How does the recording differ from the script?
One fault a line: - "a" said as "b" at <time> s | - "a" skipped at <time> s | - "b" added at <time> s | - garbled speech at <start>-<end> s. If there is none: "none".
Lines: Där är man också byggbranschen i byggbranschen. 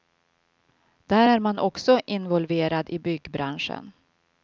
- "byggbranschen" said as "involverad" at 2.1 s